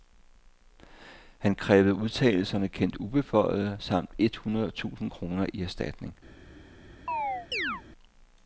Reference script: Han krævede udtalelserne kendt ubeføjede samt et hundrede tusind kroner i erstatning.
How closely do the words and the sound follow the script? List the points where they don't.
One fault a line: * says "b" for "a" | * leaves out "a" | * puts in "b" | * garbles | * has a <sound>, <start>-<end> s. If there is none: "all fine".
* has a chirp, 7.1-7.8 s